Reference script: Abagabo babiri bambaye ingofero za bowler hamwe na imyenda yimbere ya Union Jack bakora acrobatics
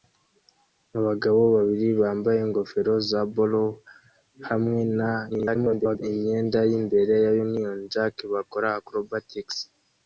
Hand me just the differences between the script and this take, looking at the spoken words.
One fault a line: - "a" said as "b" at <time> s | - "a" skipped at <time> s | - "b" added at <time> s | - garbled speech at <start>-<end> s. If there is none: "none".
- garbled speech at 5.3-6.0 s